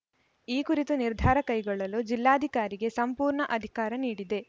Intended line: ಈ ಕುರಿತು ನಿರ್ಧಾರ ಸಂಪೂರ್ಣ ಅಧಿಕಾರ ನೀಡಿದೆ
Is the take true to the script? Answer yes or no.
no